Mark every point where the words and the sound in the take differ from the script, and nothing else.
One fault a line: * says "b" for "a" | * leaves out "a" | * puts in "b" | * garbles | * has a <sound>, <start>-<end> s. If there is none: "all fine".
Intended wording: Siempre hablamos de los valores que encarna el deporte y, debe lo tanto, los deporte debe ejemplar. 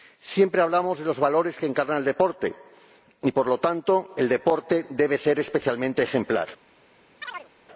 * says "por" for "debe"
* says "el" for "los"
* puts in "ser especialmente"
* has a chirp, 7.2-7.5 s